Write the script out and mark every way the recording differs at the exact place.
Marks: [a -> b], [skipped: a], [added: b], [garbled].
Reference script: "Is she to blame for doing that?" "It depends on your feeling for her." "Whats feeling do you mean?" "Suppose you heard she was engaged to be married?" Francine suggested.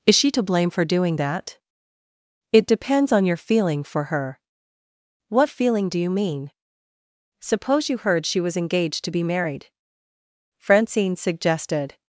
"Is she to blame for doing that?" "It depends on your feeling for her." ["Whats -> What] feeling do you mean?" "Suppose you heard she was engaged to be married?" Francine suggested.